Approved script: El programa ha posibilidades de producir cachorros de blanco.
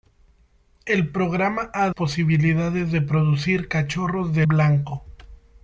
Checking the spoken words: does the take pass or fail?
pass